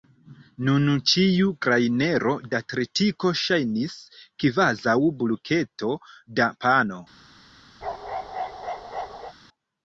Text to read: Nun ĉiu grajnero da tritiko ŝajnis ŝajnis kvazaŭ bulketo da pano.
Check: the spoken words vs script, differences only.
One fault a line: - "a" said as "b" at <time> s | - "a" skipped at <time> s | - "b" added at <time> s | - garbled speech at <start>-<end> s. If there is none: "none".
- "ŝajnis" skipped at 4.0 s